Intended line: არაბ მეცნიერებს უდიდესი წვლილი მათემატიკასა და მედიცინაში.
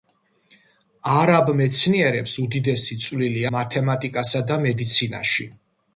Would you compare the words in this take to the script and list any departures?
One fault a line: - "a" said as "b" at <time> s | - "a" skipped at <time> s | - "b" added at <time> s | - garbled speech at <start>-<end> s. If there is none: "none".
none